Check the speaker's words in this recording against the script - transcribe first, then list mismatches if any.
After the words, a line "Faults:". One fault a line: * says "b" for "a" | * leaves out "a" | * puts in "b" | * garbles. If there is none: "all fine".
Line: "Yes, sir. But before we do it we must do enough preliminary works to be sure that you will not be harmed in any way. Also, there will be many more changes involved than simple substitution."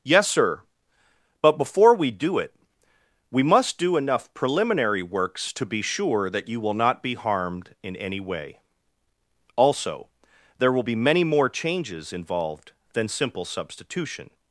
"Yes, sir. But before we do it we must do enough preliminary works to be sure that you will not be harmed in any way. Also, there will be many more changes involved than simple substitution."
Faults:
all fine